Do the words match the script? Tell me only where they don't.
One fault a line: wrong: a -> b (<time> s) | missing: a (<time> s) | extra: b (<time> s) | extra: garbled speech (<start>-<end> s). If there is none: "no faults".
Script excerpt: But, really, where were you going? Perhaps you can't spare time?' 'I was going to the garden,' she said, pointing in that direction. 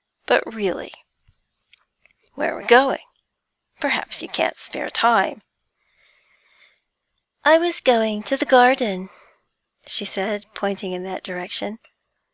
missing: you (2.6 s)